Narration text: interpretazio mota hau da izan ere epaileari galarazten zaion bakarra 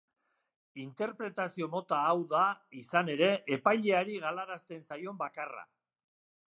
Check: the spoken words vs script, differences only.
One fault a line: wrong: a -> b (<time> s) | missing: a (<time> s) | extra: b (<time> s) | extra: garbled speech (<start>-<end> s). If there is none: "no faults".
no faults